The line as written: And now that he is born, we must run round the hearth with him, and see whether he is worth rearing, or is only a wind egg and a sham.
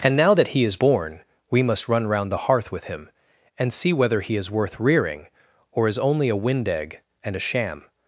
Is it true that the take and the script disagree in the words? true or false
false